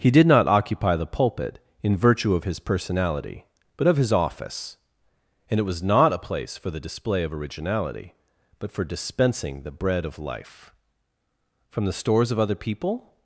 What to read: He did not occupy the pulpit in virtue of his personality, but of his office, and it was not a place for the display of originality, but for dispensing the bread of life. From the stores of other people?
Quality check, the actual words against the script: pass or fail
pass